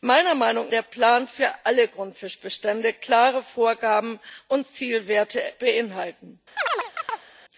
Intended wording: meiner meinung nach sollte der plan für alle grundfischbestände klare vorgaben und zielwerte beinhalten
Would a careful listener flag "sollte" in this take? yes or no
yes